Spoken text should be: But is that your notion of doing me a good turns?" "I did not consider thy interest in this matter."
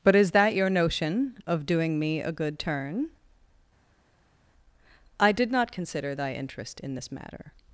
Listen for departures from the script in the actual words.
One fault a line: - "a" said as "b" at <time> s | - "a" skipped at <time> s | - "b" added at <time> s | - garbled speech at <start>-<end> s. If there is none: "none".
- "turns" said as "turn" at 2.6 s